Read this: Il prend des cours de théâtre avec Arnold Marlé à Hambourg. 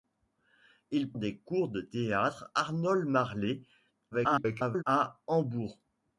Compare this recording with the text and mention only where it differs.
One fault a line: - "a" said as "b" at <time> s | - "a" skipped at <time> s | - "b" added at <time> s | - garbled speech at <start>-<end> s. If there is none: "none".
- "prend" skipped at 1.1 s
- "avec" skipped at 2.5 s
- garbled speech at 4.1-4.8 s